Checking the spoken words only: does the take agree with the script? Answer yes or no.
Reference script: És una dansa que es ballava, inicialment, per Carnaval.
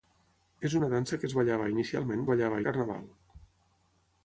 no